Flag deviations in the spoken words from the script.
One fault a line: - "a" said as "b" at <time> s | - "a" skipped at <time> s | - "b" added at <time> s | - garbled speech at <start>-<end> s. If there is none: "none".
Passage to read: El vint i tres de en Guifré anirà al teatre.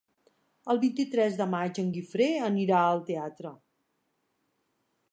- "maig" added at 1.5 s